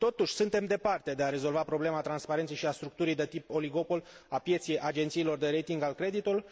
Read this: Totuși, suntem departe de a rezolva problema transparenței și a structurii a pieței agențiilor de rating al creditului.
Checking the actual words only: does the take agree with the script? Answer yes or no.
no